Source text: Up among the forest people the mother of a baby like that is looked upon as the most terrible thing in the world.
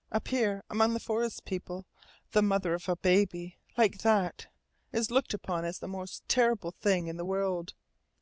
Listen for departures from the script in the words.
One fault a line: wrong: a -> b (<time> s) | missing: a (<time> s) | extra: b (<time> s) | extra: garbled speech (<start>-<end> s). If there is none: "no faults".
extra: here (0.3 s)